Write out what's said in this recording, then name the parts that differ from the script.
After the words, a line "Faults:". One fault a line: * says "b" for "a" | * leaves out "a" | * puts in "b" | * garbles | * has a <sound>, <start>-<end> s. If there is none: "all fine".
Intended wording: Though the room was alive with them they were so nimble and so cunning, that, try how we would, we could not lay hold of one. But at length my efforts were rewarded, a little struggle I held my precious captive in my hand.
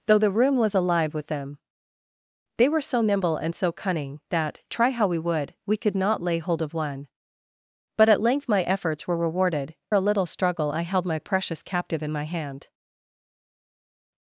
Though the room was alive with them they were so nimble and so cunning, that, try how we would, we could not lay hold of one. But at length my efforts were rewarded, a little struggle I held my precious captive in my hand.
Faults:
all fine